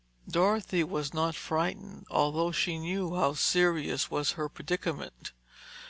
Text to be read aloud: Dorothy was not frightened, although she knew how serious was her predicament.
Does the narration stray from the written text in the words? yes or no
no